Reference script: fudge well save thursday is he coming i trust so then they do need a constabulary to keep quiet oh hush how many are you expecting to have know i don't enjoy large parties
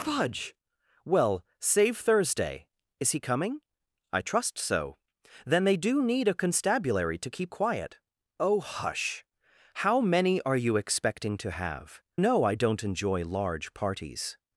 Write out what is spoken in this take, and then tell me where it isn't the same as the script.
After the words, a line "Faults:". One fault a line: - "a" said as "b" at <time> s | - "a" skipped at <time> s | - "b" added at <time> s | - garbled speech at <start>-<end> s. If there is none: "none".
fudge well save thursday is he coming i trust so then they do need a constabulary to keep quiet oh hush how many are you expecting to have know i don't enjoy large parties
Faults:
none